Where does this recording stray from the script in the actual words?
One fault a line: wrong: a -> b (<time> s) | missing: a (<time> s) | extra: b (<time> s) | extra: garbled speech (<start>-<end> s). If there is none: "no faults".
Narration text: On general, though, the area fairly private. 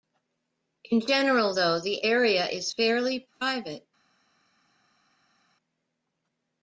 wrong: On -> In (0.8 s)
extra: is (2.5 s)